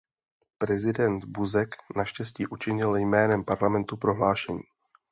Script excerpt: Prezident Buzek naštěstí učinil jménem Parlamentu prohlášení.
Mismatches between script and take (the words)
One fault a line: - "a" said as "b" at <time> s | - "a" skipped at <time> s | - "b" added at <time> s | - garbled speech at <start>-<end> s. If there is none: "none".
none